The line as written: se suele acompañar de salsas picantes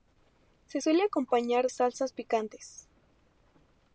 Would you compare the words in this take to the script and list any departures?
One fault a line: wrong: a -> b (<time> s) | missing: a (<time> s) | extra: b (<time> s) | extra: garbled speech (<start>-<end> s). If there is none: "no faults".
missing: de (1.7 s)